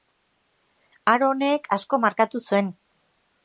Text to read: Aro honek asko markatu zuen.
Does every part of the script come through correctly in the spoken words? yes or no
yes